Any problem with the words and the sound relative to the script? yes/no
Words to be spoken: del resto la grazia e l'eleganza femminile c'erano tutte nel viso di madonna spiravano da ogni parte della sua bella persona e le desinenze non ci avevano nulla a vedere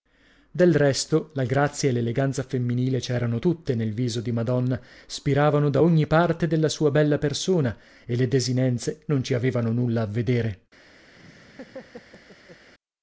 yes